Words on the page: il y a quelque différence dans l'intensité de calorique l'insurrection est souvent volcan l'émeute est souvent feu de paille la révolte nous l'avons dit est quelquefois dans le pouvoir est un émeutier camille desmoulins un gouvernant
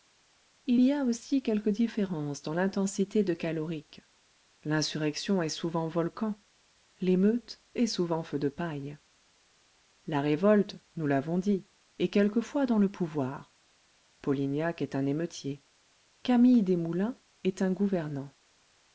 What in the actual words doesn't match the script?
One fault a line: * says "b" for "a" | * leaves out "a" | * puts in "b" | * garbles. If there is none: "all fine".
* puts in "aussi"
* puts in "polignac"
* puts in "est"